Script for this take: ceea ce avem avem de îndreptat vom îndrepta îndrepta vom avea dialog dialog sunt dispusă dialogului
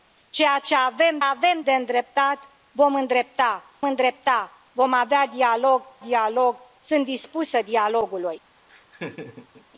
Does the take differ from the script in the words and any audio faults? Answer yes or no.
yes